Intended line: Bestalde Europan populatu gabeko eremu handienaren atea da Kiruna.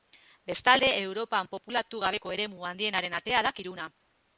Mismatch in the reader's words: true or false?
false